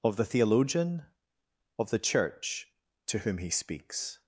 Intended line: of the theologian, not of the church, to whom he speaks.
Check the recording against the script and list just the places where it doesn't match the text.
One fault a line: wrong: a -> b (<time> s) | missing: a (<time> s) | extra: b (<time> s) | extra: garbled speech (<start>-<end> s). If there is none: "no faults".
missing: not (1.1 s)